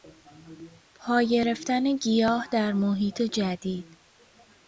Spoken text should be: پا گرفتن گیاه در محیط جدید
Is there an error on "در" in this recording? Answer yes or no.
no